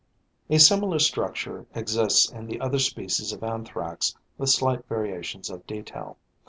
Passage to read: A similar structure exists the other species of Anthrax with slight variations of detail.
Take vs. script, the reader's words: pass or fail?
fail